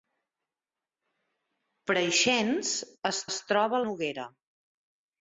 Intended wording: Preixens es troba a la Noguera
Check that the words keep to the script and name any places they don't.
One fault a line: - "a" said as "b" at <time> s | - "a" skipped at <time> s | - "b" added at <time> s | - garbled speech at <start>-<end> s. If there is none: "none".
- "es" added at 3.3 s
- "la" skipped at 3.8 s